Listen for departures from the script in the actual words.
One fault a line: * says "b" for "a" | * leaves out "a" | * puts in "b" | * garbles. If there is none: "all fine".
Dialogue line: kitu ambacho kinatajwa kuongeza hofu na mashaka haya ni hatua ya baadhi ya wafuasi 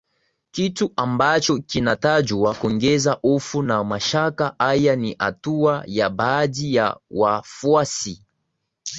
all fine